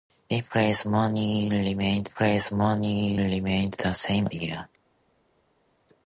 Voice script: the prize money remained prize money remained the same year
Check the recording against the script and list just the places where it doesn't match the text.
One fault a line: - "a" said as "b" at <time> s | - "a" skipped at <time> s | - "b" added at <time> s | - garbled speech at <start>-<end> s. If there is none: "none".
none